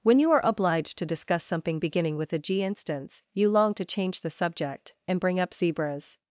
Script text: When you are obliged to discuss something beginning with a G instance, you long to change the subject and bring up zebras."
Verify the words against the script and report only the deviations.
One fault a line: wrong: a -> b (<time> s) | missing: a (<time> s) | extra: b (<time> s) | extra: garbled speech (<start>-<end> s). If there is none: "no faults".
no faults